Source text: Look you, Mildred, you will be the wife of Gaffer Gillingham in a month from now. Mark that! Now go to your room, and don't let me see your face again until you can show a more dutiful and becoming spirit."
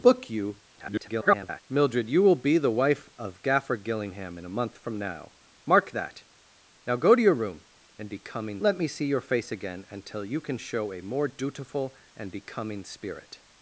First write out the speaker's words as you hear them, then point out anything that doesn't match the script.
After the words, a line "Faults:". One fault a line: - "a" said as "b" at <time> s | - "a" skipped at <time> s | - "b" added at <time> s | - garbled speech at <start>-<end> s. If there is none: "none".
Look you, [garbled] Mildred, you will be the wife of Gaffer Gillingham in a month from now. Mark that! Now go to your room, and becoming let me see your face again until you can show a more dutiful and becoming spirit."
Faults:
- garbled speech at 0.7-1.6 s
- "don't" said as "becoming" at 8.1 s